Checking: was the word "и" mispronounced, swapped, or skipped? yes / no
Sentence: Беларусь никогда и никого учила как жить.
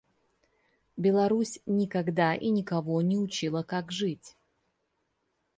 no